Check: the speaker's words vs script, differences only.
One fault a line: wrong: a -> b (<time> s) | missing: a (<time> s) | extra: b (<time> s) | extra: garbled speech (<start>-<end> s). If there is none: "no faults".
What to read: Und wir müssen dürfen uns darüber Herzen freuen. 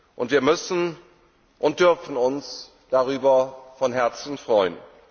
extra: und (1.6 s)
extra: von (3.8 s)